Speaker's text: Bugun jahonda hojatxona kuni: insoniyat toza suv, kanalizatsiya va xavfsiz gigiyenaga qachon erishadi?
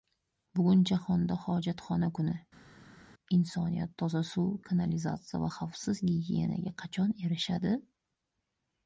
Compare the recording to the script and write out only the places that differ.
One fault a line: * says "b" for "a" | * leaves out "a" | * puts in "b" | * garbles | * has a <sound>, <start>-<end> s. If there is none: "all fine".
all fine